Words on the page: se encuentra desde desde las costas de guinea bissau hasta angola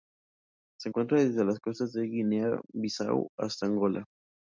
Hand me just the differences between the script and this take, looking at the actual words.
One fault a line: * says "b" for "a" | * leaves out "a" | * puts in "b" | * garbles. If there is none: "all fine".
* leaves out "desde"